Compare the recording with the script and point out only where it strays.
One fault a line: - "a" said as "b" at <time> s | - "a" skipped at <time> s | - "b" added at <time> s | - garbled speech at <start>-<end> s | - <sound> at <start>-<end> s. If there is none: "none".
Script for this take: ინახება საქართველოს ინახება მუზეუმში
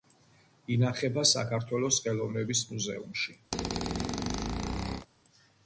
- "ინახება" said as "ხელოვნების" at 2.0 s
- squeak at 3.5-5.1 s